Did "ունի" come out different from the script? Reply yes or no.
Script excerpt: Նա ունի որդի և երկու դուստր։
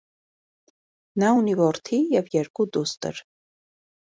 no